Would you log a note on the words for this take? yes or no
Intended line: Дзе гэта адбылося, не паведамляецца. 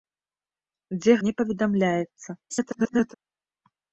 yes